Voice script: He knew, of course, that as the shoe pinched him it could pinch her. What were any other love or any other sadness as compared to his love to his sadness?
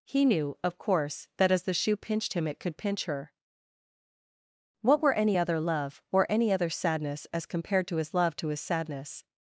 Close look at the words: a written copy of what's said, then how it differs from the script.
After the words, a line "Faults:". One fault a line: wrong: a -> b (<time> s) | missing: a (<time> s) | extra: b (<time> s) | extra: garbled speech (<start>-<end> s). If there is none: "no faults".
He knew, of course, that as the shoe pinched him it could pinch her. What were any other love or any other sadness as compared to his love to his sadness?
Faults:
no faults